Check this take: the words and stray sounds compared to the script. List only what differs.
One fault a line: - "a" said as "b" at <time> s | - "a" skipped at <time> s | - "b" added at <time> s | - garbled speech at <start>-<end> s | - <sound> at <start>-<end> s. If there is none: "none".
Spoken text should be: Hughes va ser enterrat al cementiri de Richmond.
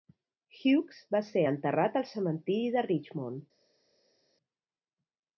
none